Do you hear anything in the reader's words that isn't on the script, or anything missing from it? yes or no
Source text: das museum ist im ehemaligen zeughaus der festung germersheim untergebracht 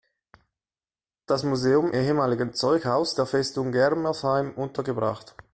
yes